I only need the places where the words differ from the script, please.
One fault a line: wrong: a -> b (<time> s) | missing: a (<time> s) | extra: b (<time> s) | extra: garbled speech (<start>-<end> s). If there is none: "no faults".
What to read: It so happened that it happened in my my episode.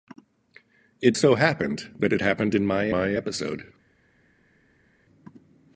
no faults